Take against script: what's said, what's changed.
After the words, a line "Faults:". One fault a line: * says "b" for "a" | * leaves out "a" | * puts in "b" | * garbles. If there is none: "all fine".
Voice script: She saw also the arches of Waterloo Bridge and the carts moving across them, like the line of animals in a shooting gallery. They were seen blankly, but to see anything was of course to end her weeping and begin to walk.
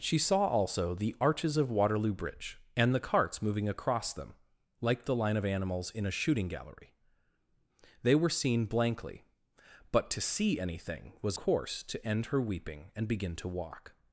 She saw also the arches of Waterloo Bridge and the carts moving across them, like the line of animals in a shooting gallery. They were seen blankly, but to see anything was course to end her weeping and begin to walk.
Faults:
* leaves out "of"